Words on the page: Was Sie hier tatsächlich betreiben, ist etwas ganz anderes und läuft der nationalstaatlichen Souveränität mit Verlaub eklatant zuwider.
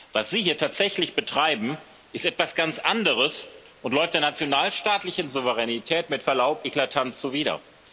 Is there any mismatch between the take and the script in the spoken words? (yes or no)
no